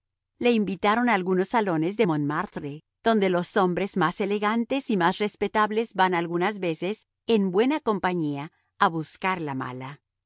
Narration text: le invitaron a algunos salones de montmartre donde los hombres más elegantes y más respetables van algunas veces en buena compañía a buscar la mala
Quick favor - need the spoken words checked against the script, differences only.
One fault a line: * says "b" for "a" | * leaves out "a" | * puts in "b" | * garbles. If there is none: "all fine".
all fine